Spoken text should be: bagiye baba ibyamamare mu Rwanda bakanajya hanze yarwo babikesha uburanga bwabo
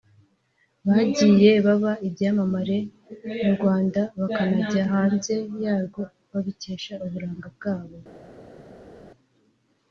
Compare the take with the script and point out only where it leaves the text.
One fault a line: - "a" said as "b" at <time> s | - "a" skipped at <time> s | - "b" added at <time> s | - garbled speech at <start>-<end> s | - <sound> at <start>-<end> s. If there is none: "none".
none